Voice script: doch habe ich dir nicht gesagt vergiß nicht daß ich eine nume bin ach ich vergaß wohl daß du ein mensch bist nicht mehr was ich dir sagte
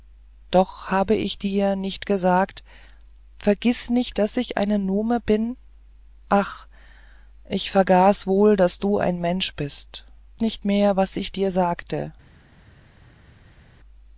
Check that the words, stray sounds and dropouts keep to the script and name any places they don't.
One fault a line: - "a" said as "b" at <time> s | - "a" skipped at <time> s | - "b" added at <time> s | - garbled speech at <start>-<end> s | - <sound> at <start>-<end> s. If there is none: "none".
none